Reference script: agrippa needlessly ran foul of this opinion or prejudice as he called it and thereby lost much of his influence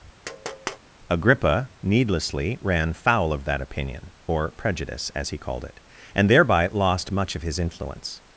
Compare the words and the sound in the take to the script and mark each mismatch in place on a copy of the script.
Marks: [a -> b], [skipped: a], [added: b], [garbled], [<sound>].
[tap] agrippa needlessly ran foul of [this -> that] opinion or prejudice as he called it and thereby lost much of his influence